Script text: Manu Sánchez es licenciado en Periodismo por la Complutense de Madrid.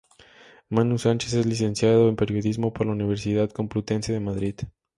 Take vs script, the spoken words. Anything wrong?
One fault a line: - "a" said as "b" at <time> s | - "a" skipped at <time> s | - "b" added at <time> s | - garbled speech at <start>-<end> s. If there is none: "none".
- "Universidad" added at 2.9 s